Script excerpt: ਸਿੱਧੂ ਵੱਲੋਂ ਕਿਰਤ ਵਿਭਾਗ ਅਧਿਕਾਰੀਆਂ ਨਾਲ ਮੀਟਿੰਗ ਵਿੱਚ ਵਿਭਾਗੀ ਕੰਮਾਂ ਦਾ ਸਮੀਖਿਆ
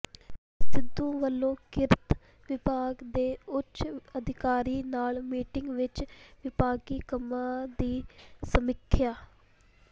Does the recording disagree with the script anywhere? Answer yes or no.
yes